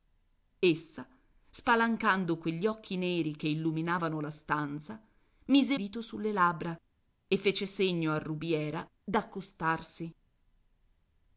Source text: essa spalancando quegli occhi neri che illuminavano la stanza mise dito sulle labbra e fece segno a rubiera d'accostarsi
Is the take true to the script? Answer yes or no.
yes